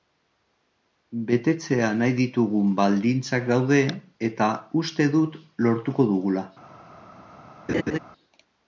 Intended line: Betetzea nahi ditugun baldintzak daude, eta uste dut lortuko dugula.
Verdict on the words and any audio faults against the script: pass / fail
fail